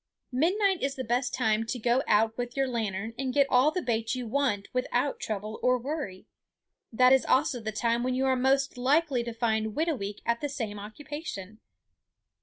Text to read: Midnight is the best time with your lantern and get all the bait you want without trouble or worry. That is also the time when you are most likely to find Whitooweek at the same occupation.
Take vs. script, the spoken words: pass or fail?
fail